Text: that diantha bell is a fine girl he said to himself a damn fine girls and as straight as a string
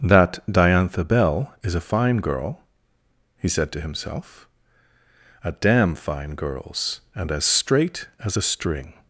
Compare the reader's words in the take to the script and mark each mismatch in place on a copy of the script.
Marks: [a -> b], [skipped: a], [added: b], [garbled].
that diantha bell is a fine girl he said to himself a damn fine girls and as straight as a string